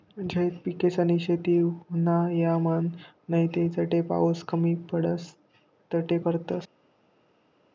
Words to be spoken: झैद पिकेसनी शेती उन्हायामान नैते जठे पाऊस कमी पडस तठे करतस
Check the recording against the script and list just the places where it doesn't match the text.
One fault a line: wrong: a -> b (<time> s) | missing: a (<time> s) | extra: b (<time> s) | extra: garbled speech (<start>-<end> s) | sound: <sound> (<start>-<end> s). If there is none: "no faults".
no faults